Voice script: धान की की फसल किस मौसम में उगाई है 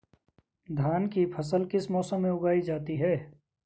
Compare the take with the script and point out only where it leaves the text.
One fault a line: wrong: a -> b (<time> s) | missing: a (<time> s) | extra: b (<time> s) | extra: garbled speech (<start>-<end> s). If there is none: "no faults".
missing: की (1.2 s)
extra: जाती (2.6 s)